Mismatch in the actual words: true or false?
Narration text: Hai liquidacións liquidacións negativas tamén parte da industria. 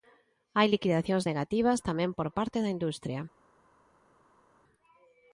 true